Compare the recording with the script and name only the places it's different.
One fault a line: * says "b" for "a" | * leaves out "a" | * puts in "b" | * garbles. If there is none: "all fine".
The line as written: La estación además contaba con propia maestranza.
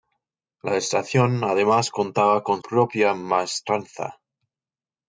all fine